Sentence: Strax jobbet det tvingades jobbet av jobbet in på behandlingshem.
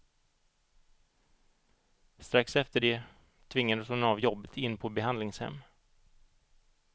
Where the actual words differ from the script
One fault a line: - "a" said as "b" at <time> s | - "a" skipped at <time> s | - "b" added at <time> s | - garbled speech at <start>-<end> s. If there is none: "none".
- "jobbet" said as "efter" at 2.5 s
- "jobbet" said as "hon" at 3.9 s